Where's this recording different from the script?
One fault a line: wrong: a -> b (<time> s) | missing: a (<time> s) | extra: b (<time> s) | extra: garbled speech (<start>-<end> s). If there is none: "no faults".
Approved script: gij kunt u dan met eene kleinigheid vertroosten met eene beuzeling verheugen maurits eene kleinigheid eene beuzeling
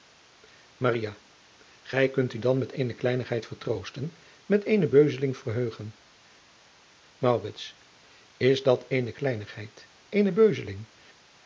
extra: is dat (8.4 s)